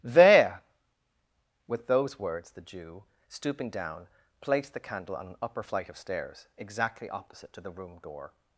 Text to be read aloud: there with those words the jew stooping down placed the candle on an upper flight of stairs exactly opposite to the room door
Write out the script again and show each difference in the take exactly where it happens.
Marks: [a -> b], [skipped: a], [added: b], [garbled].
there with those words the jew stooping down placed the candle on an upper flight of stairs exactly opposite to the room door